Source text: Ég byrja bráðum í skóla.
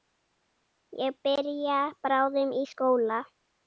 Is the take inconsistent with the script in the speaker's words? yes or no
no